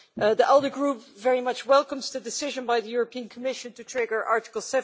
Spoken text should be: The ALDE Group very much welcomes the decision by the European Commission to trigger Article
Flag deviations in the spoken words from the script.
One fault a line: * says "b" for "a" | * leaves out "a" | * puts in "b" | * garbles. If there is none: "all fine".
all fine